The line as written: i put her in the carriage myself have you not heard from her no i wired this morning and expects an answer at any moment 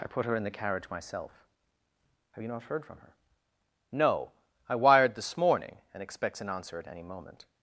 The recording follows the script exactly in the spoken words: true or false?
true